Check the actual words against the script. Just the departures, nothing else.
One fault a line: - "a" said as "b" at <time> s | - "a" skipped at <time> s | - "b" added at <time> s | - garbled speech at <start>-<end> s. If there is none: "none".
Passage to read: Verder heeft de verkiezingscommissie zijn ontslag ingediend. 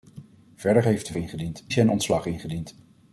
- "verkiezingscommissie" said as "ingediend" at 1.2 s